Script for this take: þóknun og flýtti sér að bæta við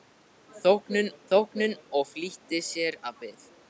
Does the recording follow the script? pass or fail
fail